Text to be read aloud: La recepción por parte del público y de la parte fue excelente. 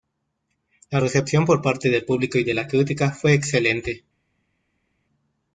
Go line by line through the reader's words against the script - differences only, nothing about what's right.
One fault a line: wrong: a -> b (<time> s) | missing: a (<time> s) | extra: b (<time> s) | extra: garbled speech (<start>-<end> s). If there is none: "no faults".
wrong: parte -> crítica (2.7 s)